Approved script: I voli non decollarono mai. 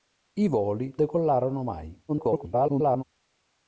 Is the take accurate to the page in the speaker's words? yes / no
no